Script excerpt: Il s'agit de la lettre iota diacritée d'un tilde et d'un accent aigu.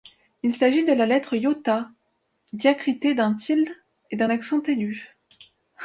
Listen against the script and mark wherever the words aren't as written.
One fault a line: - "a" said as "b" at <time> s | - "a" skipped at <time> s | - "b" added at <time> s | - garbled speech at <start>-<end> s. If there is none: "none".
none